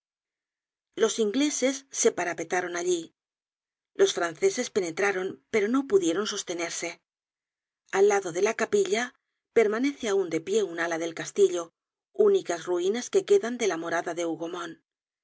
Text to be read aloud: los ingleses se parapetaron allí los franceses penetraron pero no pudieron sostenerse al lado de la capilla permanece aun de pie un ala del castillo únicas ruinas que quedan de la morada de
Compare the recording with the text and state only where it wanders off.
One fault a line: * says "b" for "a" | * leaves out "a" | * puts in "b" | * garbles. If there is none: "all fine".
all fine